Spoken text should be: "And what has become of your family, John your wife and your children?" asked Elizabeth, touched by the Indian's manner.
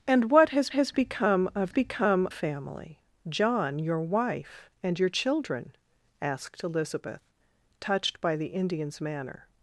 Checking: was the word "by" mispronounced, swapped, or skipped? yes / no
no